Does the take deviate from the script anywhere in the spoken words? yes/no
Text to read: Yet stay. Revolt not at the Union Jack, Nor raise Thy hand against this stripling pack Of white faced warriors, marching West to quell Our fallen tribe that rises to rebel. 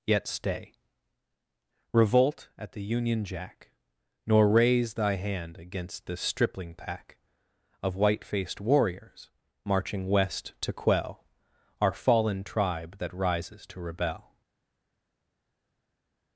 yes